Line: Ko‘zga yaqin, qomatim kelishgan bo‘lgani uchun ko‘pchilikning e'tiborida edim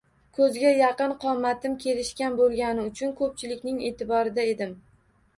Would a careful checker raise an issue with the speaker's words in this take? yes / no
no